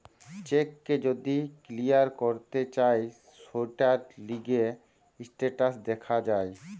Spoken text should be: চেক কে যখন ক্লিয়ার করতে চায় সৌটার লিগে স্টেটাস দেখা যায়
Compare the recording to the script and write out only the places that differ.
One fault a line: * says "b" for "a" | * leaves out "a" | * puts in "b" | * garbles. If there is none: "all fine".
* says "যদি" for "যখন"